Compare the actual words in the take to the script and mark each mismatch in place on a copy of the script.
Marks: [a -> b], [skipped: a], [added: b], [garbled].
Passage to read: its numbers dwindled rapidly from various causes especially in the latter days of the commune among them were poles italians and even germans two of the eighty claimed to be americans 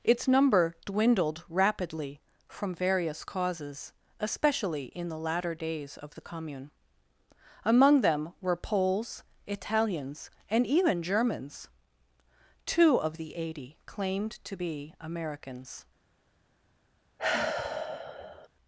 its [numbers -> number] dwindled rapidly from various causes especially in the latter days of the commune among them were poles italians and even germans two of the eighty claimed to be americans